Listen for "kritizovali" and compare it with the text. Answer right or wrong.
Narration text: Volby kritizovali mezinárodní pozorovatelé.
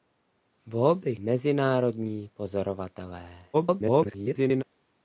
wrong